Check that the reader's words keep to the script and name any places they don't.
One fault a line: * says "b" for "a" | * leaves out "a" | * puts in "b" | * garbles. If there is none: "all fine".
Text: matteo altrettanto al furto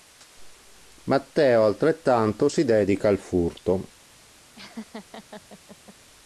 * puts in "si dedica"